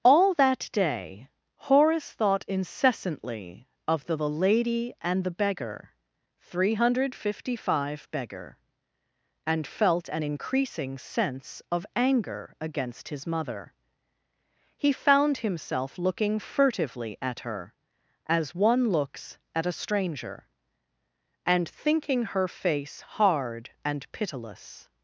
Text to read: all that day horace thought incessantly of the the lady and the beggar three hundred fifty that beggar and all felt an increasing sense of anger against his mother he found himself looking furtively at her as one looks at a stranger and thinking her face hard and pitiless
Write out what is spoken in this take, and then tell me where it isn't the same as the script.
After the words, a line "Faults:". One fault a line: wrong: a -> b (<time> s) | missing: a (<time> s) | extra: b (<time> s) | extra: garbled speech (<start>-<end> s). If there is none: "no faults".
all that day horace thought incessantly of the the lady and the beggar three hundred fifty five beggar and felt an increasing sense of anger against his mother he found himself looking furtively at her as one looks at a stranger and thinking her face hard and pitiless
Faults:
wrong: that -> five (7.7 s)
missing: all (9.6 s)